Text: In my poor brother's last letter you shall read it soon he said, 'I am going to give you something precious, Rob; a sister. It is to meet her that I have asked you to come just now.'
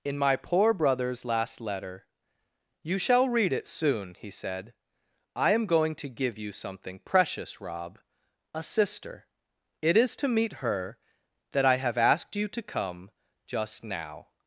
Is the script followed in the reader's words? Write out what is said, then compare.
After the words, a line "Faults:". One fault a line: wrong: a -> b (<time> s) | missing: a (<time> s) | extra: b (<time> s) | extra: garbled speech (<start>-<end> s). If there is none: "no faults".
In my poor brother's last letter you shall read it soon he said, 'I am going to give you something precious, Rob; a sister. It is to meet her that I have asked you to come just now.'
Faults:
no faults